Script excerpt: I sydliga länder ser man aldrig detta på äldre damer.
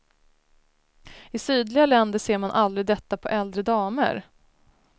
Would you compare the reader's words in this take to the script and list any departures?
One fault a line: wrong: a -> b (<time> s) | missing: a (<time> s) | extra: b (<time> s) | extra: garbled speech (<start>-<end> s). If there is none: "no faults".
no faults